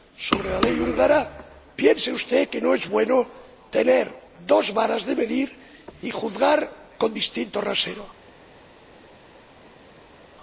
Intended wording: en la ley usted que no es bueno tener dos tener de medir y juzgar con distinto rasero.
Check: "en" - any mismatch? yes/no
yes